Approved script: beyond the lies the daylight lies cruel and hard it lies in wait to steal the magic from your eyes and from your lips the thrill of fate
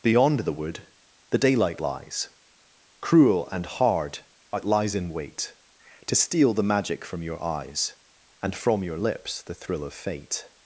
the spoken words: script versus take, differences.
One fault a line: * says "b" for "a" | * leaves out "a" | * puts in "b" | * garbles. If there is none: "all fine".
* says "wood" for "lies"